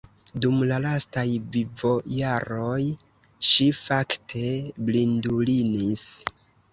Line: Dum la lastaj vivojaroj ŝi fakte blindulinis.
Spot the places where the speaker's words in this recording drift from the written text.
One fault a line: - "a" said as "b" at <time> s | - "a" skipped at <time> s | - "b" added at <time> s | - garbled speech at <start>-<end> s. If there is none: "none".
none